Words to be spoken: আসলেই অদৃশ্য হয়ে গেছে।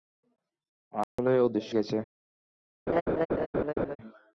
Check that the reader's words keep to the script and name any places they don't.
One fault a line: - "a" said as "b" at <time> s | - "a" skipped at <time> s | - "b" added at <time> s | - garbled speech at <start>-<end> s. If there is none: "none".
- "হয়ে" skipped at 1.7 s